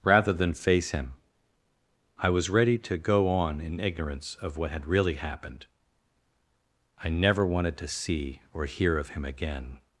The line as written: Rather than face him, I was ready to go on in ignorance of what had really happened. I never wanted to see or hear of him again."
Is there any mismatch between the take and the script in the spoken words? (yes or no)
no